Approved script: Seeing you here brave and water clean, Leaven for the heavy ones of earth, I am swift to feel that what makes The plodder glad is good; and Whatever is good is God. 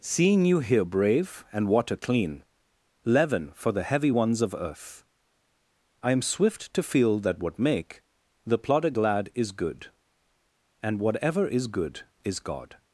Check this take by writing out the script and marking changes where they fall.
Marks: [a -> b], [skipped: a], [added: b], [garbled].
Seeing you here brave and water clean, Leaven for the heavy ones of earth, I am swift to feel that what [makes -> make] The plodder glad is good; and Whatever is good is God.